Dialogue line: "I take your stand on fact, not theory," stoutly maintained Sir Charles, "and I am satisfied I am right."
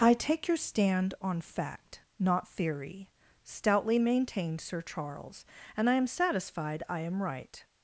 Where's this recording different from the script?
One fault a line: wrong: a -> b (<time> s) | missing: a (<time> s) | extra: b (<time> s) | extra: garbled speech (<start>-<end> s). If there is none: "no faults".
no faults